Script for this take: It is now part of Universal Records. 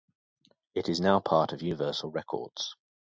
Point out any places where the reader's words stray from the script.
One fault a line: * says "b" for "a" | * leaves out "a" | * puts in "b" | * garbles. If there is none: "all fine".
all fine